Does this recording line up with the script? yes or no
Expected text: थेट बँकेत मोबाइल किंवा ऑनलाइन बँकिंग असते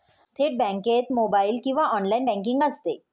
yes